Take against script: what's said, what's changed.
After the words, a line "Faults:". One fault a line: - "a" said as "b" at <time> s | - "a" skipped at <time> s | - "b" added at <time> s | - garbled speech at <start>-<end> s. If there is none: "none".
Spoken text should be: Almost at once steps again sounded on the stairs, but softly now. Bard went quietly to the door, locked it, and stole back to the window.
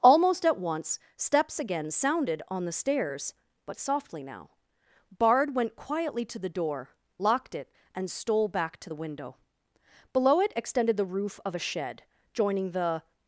Almost at once steps again sounded on the stairs, but softly now. Bard went quietly to the door, locked it, and stole back to the window. Below it extended the roof of a shed, joining the
Faults:
- "Below it extended the roof of a shed joining the" added at 10.1 s